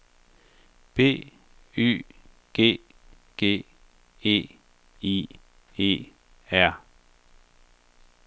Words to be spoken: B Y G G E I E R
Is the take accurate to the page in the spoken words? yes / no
yes